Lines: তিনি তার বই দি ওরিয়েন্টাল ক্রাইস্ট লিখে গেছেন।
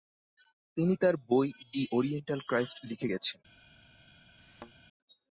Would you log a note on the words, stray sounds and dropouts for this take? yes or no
yes